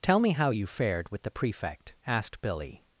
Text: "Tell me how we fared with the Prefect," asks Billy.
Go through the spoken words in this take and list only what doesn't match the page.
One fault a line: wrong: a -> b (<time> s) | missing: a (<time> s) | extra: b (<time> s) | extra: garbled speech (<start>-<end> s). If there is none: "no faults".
wrong: we -> you (0.5 s)
wrong: asks -> asked (2.1 s)